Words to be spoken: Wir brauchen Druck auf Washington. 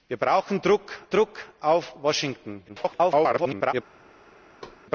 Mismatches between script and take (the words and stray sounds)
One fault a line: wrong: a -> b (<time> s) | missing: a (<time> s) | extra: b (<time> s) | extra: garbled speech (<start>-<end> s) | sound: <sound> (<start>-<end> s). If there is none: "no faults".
extra: Druck (1.1 s)
extra: garbled speech (2.7-3.7 s)
sound: thud (4.6-4.8 s)